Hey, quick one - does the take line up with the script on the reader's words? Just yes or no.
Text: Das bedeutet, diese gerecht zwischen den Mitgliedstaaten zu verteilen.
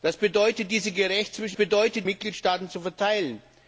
no